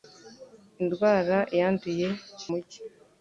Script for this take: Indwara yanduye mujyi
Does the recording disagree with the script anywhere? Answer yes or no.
no